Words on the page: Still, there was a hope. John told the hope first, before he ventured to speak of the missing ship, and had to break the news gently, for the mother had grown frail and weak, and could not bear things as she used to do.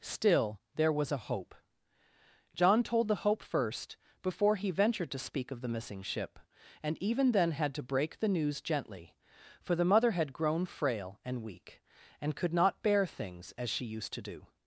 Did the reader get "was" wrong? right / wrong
right